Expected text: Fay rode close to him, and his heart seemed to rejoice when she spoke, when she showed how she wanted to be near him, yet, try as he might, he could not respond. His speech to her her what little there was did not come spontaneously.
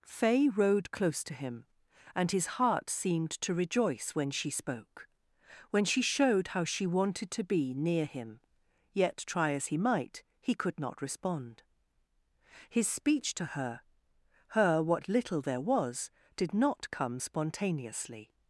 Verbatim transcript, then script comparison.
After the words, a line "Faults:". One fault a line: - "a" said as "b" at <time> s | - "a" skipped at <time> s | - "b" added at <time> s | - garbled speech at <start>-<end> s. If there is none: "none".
Fay rode close to him, and his heart seemed to rejoice when she spoke, when she showed how she wanted to be near him, yet, try as he might, he could not respond. His speech to her her what little there was did not come spontaneously.
Faults:
none